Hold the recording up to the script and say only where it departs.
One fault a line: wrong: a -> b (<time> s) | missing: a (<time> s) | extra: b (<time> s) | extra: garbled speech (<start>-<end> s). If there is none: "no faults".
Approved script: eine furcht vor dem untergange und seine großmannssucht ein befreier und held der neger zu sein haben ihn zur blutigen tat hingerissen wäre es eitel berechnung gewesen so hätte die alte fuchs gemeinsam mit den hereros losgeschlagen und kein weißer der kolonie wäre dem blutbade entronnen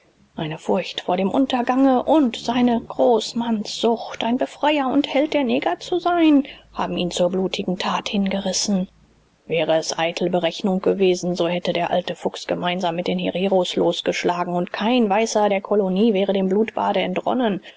wrong: die -> der (11.7 s)